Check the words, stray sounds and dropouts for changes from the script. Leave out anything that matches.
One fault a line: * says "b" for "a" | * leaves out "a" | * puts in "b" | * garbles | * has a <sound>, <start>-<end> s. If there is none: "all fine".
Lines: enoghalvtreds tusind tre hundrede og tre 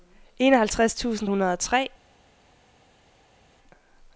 * leaves out "tre"